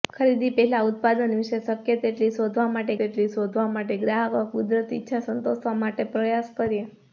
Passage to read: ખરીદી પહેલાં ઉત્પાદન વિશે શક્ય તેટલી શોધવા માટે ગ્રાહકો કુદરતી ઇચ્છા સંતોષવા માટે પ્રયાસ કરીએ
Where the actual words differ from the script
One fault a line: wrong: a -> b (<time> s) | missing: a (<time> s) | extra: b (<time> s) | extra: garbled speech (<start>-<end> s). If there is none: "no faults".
extra: તેટલી શોધવા માટે (2.9 s)